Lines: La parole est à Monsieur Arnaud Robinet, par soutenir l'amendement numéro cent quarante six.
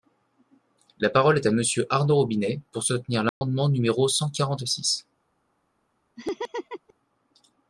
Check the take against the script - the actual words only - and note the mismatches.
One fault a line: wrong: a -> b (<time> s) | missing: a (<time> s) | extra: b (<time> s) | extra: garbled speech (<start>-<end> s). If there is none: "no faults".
wrong: par -> pour (2.7 s)